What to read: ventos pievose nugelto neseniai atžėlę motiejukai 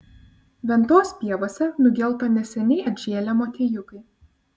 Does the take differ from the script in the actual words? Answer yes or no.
no